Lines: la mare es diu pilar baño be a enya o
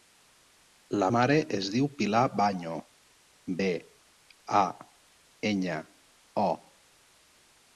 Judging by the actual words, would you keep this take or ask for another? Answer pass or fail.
pass